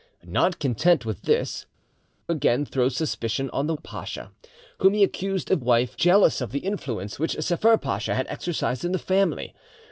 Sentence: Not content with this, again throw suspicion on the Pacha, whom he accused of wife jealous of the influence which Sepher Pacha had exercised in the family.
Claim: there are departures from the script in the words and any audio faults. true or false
false